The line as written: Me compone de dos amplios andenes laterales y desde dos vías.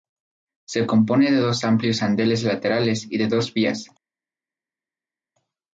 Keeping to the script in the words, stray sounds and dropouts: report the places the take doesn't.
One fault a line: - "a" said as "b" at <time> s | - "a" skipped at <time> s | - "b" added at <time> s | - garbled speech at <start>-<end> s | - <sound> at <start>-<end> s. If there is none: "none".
- "Me" said as "Se" at 0.7 s
- "desde" said as "de" at 3.2 s